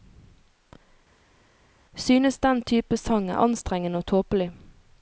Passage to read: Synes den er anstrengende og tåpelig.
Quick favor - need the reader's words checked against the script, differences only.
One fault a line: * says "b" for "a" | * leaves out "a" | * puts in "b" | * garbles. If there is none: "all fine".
* puts in "type sang"